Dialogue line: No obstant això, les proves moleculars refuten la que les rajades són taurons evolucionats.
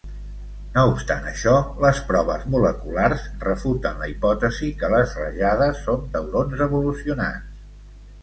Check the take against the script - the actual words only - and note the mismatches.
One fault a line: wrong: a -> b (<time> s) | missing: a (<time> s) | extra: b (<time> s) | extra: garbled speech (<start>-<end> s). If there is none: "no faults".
extra: hipòtesi (4.1 s)